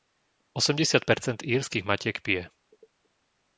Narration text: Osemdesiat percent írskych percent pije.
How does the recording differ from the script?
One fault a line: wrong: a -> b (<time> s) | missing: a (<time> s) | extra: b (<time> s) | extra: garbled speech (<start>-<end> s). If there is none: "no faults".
wrong: percent -> matiek (1.8 s)